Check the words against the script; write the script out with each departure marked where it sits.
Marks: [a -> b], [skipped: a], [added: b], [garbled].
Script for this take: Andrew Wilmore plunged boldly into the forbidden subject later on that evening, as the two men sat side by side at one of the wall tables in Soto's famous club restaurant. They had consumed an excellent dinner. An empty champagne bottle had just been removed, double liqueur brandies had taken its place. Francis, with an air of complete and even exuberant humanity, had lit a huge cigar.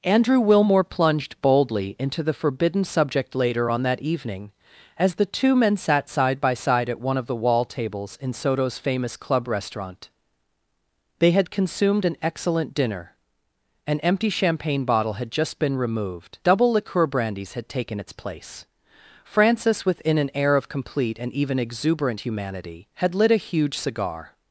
Andrew Wilmore plunged boldly into the forbidden subject later on that evening, as the two men sat side by side at one of the wall tables in Soto's famous club restaurant. They had consumed an excellent dinner. An empty champagne bottle had just been removed, double liqueur brandies had taken its place. Francis, [with -> within] an air of complete and even exuberant humanity, had lit a huge cigar.